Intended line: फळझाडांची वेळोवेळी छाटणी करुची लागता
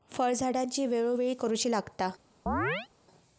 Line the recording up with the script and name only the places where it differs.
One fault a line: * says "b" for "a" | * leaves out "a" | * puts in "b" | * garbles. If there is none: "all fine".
* leaves out "छाटणी"